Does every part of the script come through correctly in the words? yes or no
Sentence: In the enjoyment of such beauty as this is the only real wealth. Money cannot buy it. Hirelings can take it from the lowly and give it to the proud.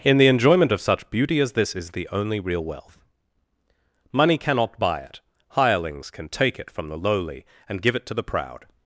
yes